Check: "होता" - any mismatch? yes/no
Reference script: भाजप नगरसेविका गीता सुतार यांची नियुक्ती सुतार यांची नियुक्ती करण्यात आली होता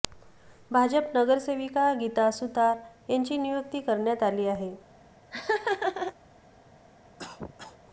yes